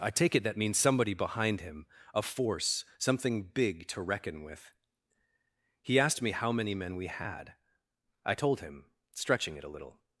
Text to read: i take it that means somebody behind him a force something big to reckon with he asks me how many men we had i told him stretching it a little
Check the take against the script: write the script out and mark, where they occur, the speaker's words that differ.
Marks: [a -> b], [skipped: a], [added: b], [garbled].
i take it that means somebody behind him a force something big to reckon with he [asks -> asked] me how many men we had i told him stretching it a little